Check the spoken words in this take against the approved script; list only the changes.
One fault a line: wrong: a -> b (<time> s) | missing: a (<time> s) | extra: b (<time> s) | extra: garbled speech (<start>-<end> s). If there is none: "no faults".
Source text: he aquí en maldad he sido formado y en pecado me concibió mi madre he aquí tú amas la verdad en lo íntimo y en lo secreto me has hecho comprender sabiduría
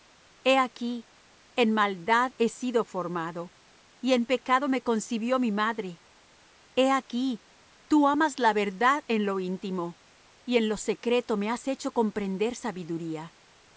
no faults